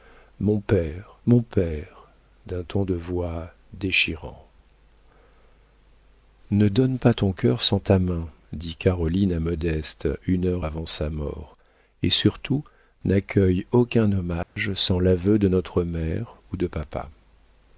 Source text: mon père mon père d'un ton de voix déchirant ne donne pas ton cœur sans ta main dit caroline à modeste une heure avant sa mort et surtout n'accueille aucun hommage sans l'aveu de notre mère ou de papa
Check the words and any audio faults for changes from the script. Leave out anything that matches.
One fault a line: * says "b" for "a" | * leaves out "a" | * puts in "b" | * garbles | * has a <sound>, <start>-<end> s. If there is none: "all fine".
* has a dropout, 14.4-14.6 s